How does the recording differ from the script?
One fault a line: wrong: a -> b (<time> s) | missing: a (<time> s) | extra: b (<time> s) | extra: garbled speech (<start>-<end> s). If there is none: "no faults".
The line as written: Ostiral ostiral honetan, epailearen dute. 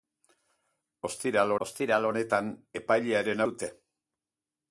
no faults